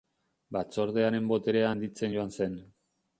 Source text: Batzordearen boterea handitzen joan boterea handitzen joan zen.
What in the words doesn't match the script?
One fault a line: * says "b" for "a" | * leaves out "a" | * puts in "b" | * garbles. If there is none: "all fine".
* leaves out "boterea handitzen joan"